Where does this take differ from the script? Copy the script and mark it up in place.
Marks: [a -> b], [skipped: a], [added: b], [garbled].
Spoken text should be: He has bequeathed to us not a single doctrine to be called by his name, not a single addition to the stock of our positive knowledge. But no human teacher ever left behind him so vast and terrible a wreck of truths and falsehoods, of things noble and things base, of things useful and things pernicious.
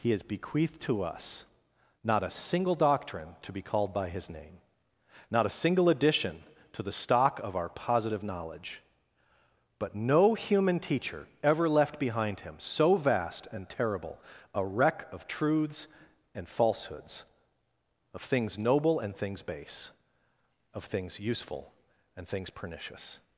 He has bequeathed to us not a single doctrine to be called by his name, not a single addition to the stock of our positive knowledge. But no human teacher ever left behind him so vast and terrible a wreck of truths and falsehoods, of things noble and things base, of things useful and things pernicious.